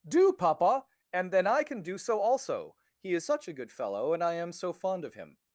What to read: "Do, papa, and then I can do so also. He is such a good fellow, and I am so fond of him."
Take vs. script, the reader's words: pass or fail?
pass